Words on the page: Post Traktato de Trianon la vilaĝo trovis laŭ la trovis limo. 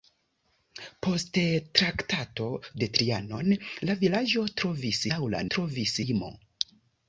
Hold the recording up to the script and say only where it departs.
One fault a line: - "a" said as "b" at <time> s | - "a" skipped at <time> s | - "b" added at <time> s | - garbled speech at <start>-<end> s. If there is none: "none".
none